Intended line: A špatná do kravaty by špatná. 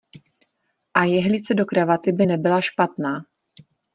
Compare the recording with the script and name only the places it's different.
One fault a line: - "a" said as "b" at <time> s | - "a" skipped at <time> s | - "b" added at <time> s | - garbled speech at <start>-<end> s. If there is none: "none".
- "špatná" said as "jehlice" at 1.0 s
- "nebyla" added at 2.2 s